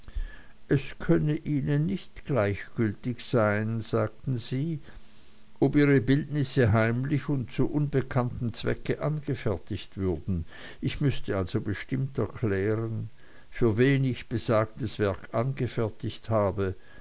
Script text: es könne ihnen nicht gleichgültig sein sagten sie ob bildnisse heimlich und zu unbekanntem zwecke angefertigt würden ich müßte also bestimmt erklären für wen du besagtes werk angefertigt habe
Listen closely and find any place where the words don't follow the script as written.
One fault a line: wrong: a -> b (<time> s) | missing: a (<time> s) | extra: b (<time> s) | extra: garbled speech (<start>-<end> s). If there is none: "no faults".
extra: ihre (5.8 s)
wrong: du -> ich (14.1 s)